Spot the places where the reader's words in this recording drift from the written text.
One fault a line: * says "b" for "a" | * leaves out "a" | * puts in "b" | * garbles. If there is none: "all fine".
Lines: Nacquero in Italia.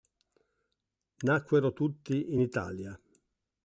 * puts in "tutti"